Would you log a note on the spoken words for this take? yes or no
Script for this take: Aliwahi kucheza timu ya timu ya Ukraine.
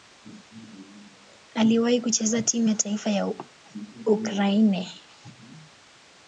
yes